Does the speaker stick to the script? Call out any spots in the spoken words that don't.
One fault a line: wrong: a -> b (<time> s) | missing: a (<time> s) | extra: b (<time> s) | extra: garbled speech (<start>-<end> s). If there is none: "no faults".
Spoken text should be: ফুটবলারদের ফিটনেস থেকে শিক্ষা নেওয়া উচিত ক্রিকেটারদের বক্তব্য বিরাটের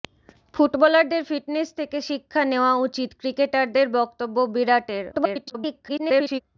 extra: garbled speech (5.1-6.4 s)